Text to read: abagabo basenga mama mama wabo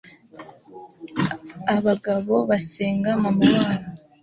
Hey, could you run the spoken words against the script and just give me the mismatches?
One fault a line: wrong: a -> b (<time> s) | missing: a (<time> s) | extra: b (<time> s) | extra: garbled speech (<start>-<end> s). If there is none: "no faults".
missing: mama (3.5 s)